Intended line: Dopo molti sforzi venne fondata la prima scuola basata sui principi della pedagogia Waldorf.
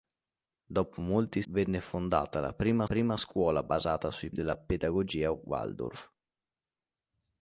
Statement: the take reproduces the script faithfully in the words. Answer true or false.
false